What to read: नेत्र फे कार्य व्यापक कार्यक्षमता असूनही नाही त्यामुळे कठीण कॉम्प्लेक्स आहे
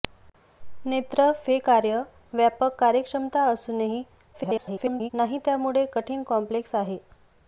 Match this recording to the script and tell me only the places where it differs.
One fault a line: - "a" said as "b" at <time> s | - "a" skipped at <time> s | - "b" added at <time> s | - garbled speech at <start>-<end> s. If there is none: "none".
- garbled speech at 4.3-5.1 s